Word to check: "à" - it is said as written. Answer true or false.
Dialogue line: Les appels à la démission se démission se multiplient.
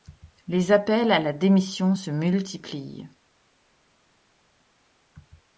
true